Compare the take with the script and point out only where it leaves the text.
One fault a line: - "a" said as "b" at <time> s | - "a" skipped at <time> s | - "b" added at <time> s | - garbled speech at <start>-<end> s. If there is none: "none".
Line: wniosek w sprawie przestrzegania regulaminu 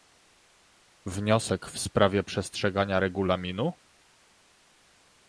none